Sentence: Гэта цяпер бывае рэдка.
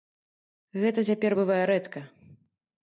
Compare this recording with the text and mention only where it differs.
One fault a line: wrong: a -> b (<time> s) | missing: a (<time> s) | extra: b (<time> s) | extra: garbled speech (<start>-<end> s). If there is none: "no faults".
no faults